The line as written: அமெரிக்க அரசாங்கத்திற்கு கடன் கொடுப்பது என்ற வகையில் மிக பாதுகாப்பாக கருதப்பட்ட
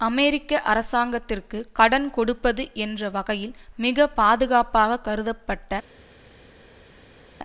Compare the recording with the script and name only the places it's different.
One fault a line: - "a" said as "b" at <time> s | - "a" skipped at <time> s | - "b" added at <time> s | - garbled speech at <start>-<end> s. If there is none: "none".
none